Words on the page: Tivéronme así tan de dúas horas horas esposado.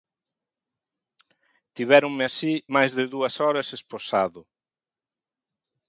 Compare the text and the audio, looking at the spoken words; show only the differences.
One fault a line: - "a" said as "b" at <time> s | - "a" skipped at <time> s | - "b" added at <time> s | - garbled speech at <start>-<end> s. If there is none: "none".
- "tan" said as "máis" at 2.7 s
- "horas" skipped at 3.7 s